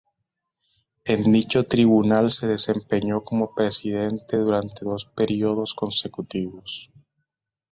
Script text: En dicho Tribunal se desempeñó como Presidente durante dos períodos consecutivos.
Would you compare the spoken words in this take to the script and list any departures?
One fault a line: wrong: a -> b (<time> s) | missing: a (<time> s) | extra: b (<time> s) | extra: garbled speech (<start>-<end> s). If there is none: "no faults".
no faults